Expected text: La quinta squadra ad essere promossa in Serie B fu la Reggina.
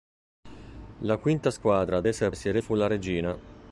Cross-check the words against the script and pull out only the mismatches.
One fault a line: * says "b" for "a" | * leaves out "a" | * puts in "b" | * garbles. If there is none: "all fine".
* leaves out "promossa"
* leaves out "B"